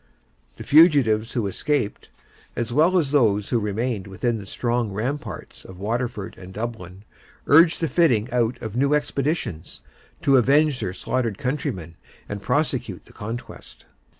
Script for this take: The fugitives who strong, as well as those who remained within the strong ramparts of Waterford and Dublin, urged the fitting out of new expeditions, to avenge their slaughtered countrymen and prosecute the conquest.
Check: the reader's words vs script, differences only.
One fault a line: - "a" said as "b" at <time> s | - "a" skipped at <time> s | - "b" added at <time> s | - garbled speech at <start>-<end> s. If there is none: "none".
- "strong" said as "escaped" at 1.4 s